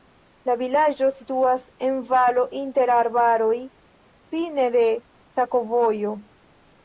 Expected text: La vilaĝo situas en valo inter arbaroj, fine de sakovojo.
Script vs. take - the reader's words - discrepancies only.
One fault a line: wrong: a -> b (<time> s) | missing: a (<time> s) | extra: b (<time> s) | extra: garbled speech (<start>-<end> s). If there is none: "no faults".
no faults